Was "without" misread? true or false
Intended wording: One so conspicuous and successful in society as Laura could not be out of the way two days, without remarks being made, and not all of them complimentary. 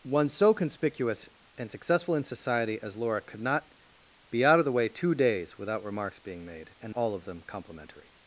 false